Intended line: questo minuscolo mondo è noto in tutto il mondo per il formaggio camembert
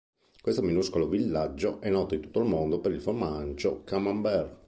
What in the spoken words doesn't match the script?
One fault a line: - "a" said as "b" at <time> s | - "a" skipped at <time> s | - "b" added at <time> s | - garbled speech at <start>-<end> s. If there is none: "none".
- "mondo" said as "villaggio" at 1.1 s